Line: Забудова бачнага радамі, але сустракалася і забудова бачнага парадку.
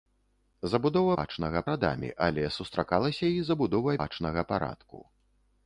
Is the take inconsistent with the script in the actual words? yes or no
no